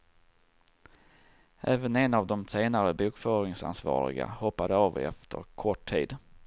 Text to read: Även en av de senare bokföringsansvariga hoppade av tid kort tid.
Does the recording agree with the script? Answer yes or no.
no